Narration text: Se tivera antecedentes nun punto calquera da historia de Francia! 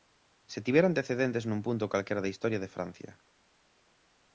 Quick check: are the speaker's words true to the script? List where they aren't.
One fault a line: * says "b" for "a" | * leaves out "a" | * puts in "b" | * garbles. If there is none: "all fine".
all fine